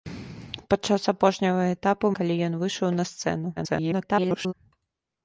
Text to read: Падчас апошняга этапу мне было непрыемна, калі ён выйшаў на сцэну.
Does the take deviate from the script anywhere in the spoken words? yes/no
yes